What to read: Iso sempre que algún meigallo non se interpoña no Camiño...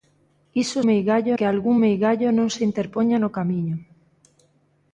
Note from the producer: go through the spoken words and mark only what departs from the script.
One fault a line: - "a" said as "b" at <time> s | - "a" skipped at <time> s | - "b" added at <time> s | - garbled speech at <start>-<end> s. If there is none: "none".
- "sempre" said as "meigallo" at 0.9 s